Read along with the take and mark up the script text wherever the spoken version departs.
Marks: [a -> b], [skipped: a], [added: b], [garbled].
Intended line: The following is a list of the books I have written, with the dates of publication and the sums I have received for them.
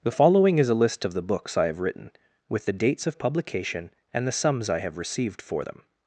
The following is a list of the books I have written, with the dates of publication and the sums I have received for them.